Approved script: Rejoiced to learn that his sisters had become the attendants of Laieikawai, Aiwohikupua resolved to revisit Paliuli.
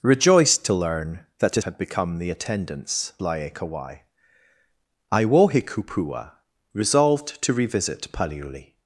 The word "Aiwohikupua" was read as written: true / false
true